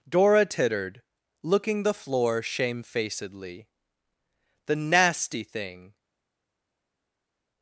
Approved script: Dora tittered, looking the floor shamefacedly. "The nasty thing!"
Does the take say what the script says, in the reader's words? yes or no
yes